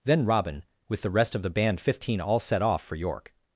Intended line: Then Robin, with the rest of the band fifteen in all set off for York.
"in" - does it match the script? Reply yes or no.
no